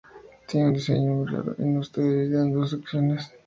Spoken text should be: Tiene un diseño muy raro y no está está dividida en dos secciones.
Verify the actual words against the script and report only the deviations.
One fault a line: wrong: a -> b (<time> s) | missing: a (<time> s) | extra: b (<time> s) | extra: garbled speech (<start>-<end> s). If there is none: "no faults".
missing: está (2.0 s)